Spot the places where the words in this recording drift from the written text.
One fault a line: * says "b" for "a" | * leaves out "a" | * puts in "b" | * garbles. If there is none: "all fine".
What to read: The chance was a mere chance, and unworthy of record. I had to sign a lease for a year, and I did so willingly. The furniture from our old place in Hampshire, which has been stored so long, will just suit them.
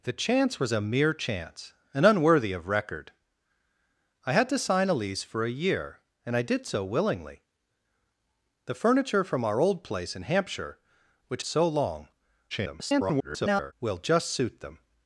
* leaves out "has been stored"
* garbles